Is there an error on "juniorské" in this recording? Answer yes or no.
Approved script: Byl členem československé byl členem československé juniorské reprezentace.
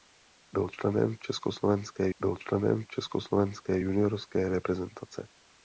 no